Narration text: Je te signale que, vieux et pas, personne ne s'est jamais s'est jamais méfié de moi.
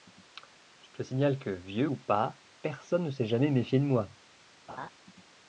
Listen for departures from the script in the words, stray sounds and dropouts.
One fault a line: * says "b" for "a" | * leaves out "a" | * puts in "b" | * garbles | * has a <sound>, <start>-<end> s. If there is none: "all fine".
* says "ou" for "et"
* leaves out "s'est jamais"
* has a laugh, 4.7-4.9 s